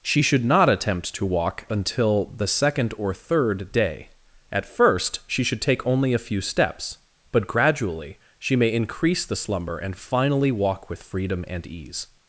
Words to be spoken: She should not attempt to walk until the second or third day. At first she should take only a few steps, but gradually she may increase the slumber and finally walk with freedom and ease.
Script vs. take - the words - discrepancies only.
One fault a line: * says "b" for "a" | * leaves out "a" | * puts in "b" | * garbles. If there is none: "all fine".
all fine